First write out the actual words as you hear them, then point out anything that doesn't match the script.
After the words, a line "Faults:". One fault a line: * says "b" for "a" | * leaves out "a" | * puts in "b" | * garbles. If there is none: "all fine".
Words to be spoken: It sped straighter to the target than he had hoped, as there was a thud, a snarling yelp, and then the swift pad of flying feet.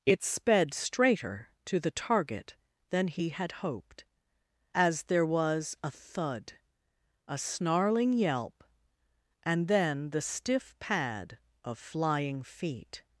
It sped straighter to the target than he had hoped, as there was a thud, a snarling yelp, and then the stiff pad of flying feet.
Faults:
* says "stiff" for "swift"